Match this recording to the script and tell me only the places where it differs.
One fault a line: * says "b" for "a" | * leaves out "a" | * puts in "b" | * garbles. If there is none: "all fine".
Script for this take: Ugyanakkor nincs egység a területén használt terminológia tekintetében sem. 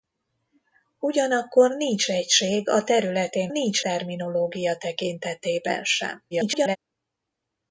* says "nincs" for "használt"
* garbles